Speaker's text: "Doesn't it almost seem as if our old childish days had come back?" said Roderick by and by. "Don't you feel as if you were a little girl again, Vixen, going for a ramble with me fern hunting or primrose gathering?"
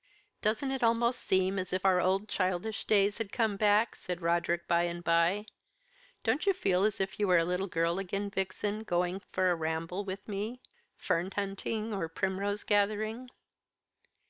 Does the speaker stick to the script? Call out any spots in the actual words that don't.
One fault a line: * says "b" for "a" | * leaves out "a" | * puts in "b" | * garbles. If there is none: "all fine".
all fine